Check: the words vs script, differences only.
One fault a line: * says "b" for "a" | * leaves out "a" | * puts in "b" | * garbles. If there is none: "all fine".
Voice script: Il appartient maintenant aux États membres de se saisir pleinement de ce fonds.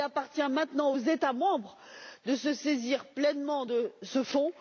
all fine